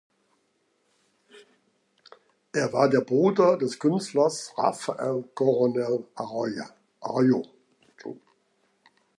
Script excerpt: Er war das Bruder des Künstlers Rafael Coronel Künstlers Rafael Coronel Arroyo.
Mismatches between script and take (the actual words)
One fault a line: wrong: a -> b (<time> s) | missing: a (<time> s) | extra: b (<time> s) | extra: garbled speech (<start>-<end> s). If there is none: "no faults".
wrong: das -> der (2.9 s)
missing: Künstlers Rafael Coronel (6.1 s)